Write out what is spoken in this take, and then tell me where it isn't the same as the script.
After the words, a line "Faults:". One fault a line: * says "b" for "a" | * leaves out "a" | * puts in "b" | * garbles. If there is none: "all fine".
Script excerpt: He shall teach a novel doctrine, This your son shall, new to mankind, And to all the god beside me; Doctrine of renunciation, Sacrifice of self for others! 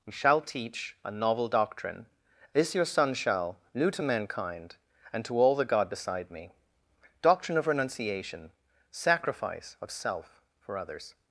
He shall teach a novel doctrine, This your son shall, new to mankind, And to all the god beside me; Doctrine of renunciation, Sacrifice of self for others!
Faults:
all fine